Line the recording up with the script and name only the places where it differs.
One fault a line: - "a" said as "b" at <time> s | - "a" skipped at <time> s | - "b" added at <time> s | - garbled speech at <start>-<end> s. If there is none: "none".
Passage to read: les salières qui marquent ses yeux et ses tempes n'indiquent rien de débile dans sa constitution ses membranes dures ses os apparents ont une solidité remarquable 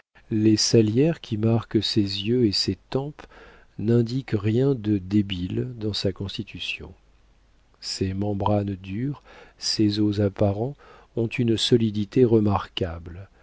none